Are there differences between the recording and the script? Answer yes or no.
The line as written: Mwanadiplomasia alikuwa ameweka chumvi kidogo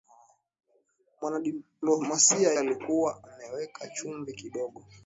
no